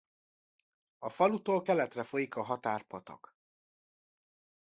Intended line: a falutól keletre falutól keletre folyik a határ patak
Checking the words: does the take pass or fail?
fail